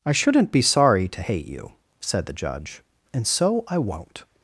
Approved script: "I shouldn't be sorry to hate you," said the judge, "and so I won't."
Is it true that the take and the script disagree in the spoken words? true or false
false